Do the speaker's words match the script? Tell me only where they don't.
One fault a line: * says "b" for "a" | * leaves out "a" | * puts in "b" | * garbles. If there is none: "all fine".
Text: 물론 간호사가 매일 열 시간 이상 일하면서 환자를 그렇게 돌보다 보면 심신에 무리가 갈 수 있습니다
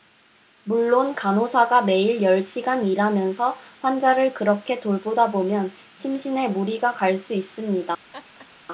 * leaves out "이상"